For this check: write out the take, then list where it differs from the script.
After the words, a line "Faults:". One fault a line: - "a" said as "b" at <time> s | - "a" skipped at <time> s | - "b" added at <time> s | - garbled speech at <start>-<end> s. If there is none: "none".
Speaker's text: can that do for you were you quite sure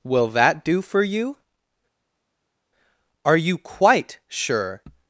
will that do for you are you quite sure
Faults:
- "can" said as "will" at 0.0 s
- "were" said as "are" at 3.2 s